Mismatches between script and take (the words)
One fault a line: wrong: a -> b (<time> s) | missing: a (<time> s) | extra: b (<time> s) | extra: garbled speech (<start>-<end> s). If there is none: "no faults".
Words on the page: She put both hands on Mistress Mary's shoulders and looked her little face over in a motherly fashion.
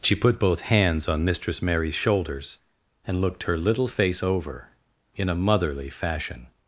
no faults